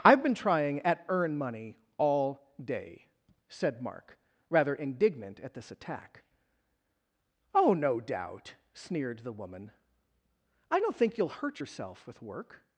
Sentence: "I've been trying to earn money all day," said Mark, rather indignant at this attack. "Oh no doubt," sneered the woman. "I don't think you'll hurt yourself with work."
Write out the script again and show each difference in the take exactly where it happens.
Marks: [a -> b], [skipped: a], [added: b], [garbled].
"I've been trying [to -> at] earn money all day," said Mark, rather indignant at this attack. "Oh no doubt," sneered the woman. "I don't think you'll hurt yourself with work."